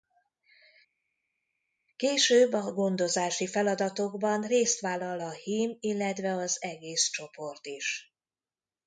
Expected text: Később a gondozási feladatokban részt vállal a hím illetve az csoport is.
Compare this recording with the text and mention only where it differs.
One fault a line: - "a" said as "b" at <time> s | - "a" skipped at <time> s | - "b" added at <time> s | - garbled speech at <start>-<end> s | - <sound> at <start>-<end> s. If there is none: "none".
- "egész" added at 6.6 s